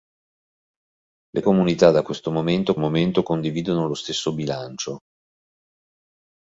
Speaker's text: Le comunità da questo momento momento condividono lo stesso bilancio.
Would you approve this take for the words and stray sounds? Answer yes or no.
yes